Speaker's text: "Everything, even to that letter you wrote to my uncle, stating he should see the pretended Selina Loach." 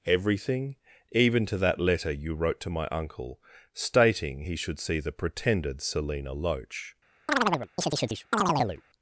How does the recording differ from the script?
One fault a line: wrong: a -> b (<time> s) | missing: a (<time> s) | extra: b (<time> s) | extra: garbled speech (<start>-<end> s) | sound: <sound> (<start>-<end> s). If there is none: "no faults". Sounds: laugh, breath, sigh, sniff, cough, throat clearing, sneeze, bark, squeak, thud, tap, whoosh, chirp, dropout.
sound: chirp (7.3-8.8 s)